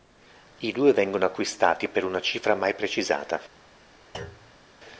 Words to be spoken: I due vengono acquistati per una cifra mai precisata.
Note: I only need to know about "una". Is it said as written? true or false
true